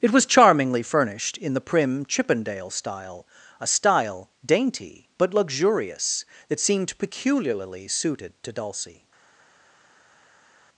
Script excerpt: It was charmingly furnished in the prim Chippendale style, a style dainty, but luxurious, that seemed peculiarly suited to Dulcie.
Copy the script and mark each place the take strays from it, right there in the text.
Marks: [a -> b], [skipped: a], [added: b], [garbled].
It was charmingly furnished in the prim Chippendale style, a style dainty, but luxurious, that seemed peculiarly suited to Dulcie.